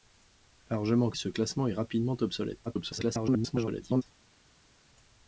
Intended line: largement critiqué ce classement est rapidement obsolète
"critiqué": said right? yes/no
no